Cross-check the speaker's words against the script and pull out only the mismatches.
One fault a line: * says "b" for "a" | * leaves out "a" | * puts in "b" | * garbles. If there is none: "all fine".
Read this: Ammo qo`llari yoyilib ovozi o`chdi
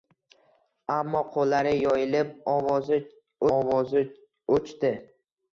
* puts in "ovozi"